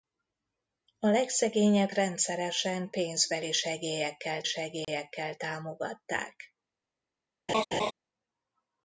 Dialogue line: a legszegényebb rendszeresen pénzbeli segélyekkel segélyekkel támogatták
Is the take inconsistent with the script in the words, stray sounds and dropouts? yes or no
yes